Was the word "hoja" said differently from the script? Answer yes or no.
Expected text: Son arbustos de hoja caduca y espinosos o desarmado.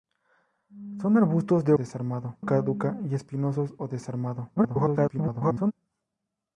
yes